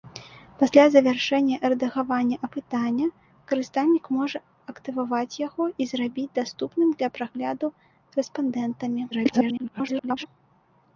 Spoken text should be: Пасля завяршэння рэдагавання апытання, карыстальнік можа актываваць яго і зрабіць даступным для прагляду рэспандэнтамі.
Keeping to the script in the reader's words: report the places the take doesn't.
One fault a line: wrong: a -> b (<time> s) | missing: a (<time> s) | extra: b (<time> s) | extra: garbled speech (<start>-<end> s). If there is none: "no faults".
extra: garbled speech (9.1-10.3 s)